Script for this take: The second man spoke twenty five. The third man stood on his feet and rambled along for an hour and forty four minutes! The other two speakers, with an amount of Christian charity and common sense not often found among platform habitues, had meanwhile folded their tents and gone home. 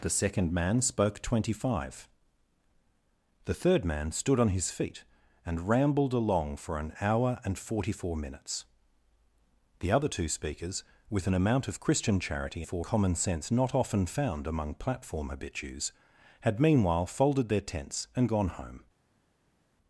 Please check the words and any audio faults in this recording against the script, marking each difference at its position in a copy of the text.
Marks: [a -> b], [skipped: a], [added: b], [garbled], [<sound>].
The second man spoke twenty five. The third man stood on his feet and rambled along for an hour and forty four minutes! The other two speakers, with an amount of Christian charity [and -> four] common sense not often found among platform habitues, had meanwhile folded their tents and gone home.